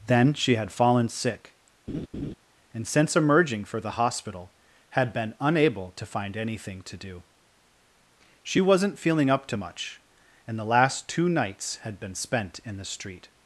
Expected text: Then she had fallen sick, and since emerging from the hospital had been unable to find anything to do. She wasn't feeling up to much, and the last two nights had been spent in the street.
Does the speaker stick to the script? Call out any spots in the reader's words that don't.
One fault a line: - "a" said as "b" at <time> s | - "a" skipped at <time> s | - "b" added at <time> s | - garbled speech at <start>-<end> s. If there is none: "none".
- "from" said as "for" at 3.6 s